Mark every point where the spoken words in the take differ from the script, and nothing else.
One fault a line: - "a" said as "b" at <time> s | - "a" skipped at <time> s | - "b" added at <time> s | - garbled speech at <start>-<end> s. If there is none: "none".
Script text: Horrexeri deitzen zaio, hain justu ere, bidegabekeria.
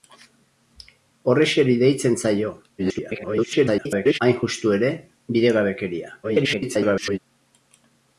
- garbled speech at 2.8-4.2 s
- garbled speech at 6.2-7.2 s